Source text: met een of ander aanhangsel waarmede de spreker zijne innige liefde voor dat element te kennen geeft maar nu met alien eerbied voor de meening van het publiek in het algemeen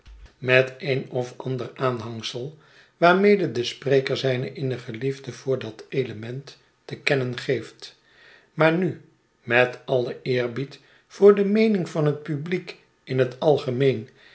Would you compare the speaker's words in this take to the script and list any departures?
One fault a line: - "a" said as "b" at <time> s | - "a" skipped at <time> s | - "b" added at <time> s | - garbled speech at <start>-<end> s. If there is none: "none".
none